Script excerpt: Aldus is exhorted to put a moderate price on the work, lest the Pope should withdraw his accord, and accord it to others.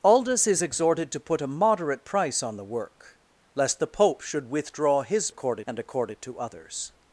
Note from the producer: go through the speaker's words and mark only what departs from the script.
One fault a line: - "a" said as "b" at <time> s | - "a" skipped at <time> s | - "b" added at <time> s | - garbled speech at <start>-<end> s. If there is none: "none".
none